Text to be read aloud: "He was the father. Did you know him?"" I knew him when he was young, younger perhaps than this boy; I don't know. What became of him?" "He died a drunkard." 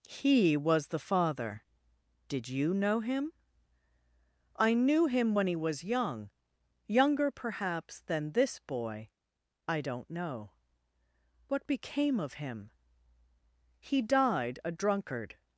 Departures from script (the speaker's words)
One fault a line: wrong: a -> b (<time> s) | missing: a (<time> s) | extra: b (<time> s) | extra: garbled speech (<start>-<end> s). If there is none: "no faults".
no faults